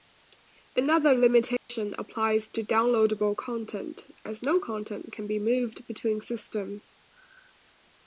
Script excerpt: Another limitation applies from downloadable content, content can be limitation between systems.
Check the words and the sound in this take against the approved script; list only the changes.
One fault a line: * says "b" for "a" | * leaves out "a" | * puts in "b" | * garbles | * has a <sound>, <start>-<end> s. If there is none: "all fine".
* has a dropout, 1.6-1.7 s
* says "to" for "from"
* puts in "as no"
* says "moved" for "limitation"